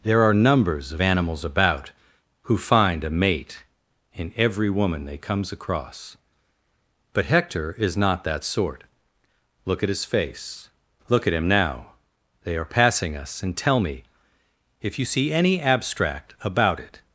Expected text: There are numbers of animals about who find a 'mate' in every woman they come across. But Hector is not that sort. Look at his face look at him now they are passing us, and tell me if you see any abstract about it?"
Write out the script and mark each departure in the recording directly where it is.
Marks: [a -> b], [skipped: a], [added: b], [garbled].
There are numbers of animals about who find a 'mate' in every woman they [come -> comes] across. But Hector is not that sort. Look at his face look at him now they are passing us, and tell me if you see any abstract about it?"